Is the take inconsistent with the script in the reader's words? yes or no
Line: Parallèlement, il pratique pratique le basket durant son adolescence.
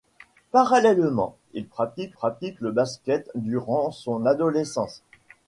no